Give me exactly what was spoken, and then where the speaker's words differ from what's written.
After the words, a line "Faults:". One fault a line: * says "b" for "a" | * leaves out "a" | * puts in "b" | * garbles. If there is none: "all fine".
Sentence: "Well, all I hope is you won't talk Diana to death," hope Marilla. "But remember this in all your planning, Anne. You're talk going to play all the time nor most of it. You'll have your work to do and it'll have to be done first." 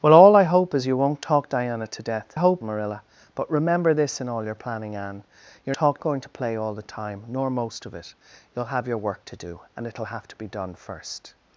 "Well, all I hope is you won't talk Diana to death," hope Marilla. "But remember this in all your planning, Anne. You're talk going to play all the time nor most of it. You'll have your work to do and it'll have to be done first."
Faults:
all fine